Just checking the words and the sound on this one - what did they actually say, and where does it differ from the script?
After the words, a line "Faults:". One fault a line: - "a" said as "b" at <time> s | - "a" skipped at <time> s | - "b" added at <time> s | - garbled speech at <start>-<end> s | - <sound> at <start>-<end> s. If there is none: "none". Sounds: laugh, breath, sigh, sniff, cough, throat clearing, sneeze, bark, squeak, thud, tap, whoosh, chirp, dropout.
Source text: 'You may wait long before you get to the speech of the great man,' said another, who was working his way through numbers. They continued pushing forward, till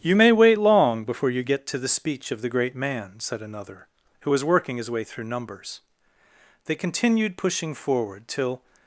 'You may wait long before you get to the speech of the great man,' said another, who was working his way through numbers. They continued pushing forward, till
Faults:
none